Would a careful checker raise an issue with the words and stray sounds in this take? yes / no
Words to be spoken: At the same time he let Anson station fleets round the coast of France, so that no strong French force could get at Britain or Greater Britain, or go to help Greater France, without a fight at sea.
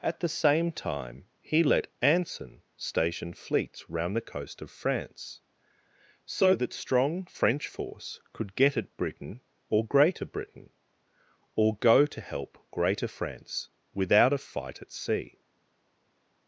yes